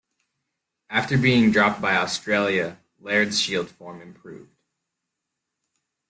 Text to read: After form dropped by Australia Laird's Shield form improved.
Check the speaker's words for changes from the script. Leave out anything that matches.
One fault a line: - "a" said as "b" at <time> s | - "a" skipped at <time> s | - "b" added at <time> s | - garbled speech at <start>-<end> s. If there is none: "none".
- "form" said as "being" at 1.1 s